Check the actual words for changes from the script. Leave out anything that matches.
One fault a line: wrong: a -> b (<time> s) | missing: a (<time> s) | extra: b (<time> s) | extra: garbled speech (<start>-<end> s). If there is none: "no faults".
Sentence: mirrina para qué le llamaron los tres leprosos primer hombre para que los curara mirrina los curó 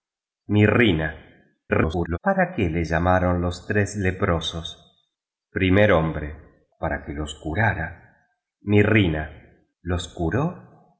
extra: garbled speech (1.7-2.2 s)